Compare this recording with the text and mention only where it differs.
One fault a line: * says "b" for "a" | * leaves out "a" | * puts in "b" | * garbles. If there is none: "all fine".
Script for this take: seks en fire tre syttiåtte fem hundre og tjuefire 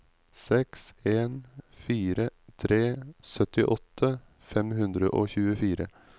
all fine